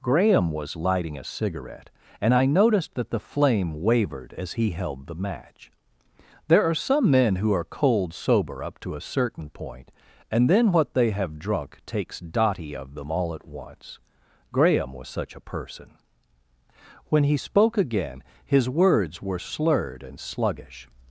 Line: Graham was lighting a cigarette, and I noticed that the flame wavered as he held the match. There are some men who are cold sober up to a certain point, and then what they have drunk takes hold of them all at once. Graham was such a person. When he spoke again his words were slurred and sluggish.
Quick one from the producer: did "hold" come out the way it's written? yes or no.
no